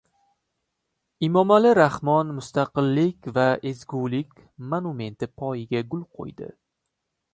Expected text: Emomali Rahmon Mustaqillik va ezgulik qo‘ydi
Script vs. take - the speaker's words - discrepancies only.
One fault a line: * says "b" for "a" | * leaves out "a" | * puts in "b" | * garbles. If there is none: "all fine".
* puts in "monumenti poyiga gul"